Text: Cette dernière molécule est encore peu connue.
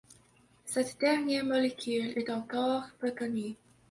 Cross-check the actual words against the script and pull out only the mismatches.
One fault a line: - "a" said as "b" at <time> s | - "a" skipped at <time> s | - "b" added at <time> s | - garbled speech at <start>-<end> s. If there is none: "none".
none